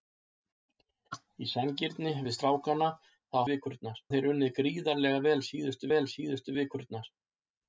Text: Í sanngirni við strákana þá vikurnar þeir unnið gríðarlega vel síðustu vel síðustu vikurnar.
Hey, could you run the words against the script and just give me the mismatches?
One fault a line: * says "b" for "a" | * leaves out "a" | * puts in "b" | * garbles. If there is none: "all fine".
all fine